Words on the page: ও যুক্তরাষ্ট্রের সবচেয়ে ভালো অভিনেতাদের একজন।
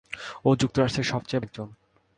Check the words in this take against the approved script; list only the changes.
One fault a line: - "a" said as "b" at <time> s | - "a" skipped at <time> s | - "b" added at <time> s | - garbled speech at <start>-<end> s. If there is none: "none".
- "ভালো অভিনেতাদের" skipped at 1.5 s